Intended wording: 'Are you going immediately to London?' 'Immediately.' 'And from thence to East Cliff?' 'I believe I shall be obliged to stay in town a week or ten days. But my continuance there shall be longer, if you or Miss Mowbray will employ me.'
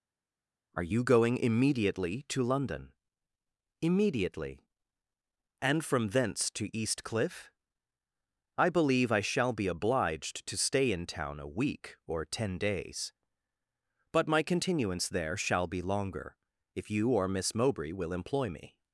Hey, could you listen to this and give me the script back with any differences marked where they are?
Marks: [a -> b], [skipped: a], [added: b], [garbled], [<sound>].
'Are you going immediately to London?' 'Immediately.' 'And from thence to East Cliff?' 'I believe I shall be obliged to stay in town a week or ten days. But my continuance there shall be longer, if you or Miss Mowbray will employ me.'